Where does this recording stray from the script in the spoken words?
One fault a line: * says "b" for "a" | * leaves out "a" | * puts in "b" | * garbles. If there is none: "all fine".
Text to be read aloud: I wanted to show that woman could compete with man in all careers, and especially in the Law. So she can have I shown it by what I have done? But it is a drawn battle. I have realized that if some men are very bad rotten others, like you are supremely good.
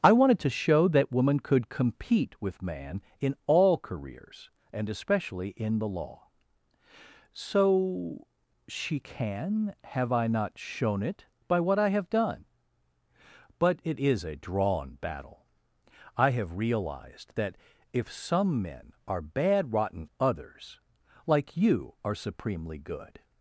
* puts in "not"
* leaves out "very"